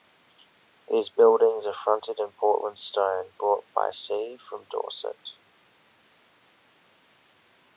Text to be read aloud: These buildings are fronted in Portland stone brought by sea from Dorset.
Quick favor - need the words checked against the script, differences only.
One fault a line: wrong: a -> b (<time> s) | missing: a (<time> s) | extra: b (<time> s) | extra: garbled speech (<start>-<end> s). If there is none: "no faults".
no faults